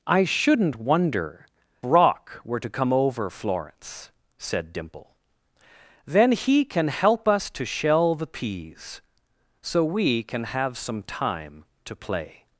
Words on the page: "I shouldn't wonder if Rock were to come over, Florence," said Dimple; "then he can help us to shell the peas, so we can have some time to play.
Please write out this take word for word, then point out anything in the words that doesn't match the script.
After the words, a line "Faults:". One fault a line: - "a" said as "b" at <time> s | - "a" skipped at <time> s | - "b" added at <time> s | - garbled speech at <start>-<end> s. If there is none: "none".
"I shouldn't wonder Rock were to come over, Florence," said Dimple; "then he can help us to shell the peas, so we can have some time to play.
Faults:
- "if" skipped at 1.5 s